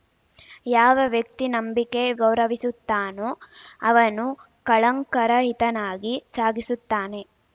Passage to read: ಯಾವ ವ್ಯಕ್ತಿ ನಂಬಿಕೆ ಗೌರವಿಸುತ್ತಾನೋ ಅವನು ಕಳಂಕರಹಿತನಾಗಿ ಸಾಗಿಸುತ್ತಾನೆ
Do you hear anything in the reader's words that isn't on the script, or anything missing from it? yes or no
no